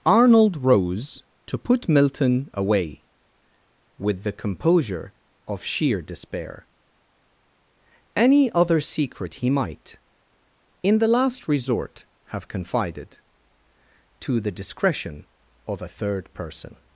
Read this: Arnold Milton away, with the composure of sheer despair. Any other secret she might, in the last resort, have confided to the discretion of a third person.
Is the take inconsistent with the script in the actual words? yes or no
yes